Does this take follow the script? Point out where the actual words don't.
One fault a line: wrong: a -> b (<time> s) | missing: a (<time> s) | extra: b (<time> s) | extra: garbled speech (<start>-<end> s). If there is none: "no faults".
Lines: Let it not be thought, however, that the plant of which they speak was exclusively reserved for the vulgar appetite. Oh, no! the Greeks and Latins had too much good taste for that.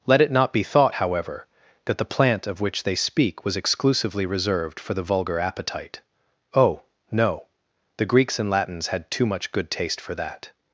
no faults